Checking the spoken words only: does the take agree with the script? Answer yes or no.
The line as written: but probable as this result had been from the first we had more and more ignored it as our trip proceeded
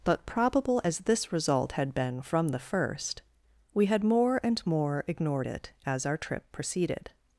yes